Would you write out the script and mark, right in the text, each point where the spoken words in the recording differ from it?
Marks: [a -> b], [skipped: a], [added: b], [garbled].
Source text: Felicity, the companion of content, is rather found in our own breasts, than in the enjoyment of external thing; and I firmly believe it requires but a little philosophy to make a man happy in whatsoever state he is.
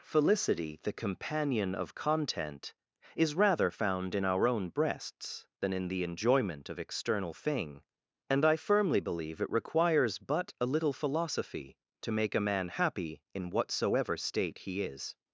Felicity, the companion of content, is rather found in our own breasts, than in the enjoyment of external thing; and I firmly believe it requires but a little philosophy to make a man happy in whatsoever state he is.